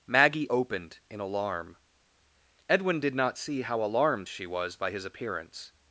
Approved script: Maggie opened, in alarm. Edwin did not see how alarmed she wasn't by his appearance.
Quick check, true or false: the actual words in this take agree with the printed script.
false